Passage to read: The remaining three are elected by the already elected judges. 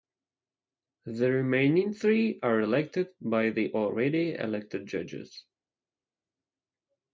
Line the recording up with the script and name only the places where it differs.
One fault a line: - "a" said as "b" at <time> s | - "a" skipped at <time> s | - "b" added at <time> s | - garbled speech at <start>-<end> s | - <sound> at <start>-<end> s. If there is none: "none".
none